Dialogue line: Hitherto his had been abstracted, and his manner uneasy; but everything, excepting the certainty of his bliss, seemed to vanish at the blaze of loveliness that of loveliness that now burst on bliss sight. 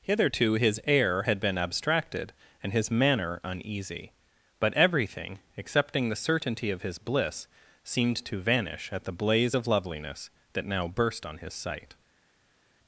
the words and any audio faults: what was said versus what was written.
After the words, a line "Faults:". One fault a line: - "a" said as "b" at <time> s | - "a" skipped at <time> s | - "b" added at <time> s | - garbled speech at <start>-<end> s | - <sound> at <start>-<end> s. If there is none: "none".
Hitherto his air had been abstracted, and his manner uneasy; but everything, excepting the certainty of his bliss, seemed to vanish at the blaze of loveliness that now burst on his sight.
Faults:
- "air" added at 0.8 s
- "of loveliness that" skipped at 10.6 s
- "bliss" said as "his" at 11.4 s